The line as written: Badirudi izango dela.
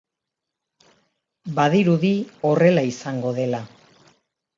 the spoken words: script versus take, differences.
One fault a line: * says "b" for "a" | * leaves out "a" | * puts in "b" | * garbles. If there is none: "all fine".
* puts in "horrela"